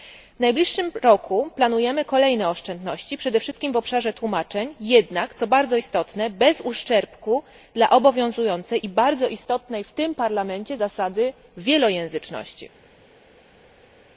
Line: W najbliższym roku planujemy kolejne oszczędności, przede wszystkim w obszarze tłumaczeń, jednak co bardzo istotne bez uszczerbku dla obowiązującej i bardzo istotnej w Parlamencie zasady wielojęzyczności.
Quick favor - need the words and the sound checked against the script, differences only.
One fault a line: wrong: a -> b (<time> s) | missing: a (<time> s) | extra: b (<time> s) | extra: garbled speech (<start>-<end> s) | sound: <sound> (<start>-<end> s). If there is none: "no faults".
extra: tym (9.9 s)